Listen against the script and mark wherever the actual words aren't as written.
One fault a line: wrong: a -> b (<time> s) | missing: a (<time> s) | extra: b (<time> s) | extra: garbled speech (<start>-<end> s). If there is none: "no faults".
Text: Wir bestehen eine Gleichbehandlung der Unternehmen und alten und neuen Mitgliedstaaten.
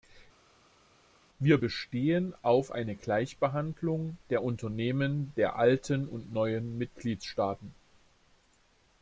extra: auf (2.4 s)
wrong: und -> der (5.4 s)